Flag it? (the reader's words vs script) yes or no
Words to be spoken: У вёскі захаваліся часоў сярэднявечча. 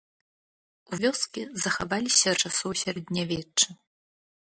no